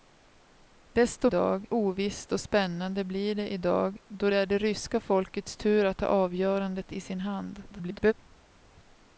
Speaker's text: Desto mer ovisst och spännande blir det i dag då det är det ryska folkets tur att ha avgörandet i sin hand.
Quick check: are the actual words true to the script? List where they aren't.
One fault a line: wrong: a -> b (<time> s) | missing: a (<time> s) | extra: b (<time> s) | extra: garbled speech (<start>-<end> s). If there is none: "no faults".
wrong: mer -> dag (1.3 s)
extra: garbled speech (7.7-8.1 s)